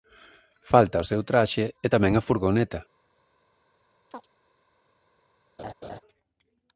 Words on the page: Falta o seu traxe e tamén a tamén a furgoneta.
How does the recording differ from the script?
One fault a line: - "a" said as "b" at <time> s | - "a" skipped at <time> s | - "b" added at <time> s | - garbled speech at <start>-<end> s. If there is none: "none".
- "tamén a" skipped at 2.2 s